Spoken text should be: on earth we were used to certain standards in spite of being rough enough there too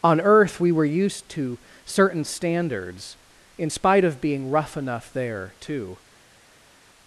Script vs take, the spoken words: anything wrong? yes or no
no